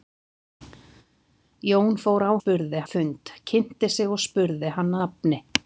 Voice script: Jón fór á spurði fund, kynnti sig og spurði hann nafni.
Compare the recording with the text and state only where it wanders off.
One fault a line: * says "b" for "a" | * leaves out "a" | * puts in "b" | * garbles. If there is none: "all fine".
all fine